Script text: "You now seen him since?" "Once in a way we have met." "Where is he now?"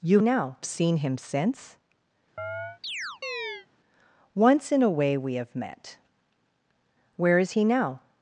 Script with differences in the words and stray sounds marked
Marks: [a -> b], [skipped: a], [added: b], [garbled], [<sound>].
"You now seen him since?" [chirp] "Once in a way we have met." "Where is he now?"